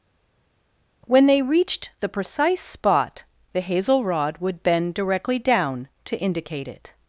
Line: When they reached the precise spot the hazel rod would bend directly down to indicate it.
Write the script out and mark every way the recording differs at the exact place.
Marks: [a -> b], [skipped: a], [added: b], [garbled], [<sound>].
When they reached the precise spot the hazel rod would bend directly down to indicate it.